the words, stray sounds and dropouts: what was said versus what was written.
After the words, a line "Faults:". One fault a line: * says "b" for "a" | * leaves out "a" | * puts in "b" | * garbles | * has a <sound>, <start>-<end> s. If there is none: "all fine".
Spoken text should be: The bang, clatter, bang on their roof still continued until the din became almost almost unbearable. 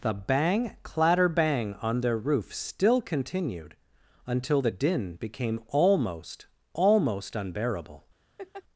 The bang, clatter, bang on their roof still continued until the din became almost almost unbearable.
Faults:
* has a laugh, 8.4-8.6 s